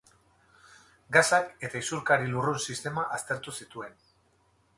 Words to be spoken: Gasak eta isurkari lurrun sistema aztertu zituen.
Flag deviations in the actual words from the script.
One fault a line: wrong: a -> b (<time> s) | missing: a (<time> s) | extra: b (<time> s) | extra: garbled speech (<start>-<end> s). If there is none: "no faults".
no faults